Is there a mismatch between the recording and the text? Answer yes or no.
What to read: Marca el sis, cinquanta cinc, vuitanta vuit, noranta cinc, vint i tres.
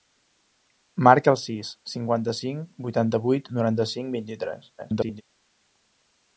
yes